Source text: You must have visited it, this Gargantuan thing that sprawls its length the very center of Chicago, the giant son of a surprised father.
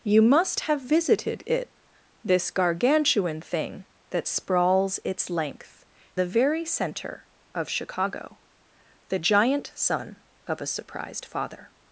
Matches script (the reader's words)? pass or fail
pass